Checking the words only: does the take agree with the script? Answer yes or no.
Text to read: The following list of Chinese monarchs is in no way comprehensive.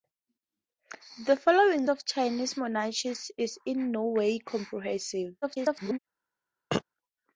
no